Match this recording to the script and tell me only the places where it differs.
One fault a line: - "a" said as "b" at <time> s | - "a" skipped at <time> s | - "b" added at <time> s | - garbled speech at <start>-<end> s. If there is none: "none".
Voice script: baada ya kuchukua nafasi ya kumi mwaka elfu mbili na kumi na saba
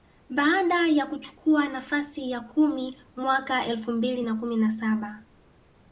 none